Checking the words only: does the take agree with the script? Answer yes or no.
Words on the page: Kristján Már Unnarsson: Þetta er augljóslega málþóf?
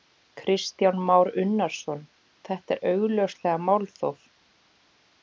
yes